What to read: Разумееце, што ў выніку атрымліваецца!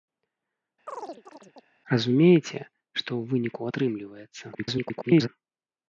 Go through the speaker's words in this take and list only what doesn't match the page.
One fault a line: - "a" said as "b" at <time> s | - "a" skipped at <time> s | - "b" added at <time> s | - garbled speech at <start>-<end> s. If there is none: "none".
- garbled speech at 4.5-5.3 s